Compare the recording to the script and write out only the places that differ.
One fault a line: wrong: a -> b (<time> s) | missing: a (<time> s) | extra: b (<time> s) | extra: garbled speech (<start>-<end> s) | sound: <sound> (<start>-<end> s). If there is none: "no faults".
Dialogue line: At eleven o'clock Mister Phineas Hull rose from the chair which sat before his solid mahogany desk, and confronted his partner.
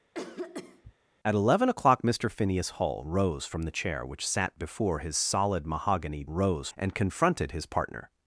sound: cough (0.1-0.9 s)
wrong: desk -> rose (6.3 s)